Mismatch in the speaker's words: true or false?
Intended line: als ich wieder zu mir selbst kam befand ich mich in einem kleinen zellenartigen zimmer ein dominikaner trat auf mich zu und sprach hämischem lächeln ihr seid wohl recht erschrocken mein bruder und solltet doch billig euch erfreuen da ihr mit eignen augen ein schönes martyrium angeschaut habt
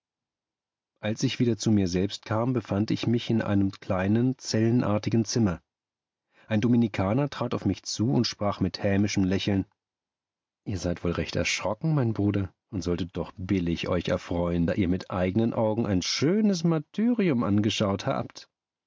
true